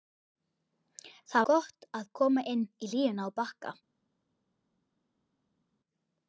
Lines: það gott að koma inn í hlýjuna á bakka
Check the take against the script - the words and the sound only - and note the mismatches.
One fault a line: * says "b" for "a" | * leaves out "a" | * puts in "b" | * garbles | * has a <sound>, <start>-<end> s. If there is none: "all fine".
all fine